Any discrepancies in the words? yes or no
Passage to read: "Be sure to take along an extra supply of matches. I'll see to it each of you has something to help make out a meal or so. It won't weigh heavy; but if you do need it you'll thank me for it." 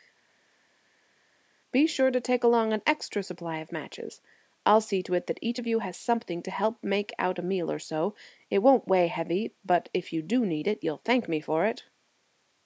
yes